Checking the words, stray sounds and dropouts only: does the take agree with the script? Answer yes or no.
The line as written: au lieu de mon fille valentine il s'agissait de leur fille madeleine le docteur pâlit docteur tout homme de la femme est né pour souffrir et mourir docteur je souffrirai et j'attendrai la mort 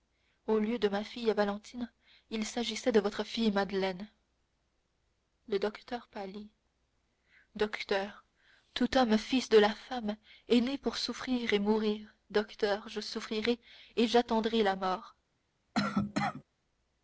no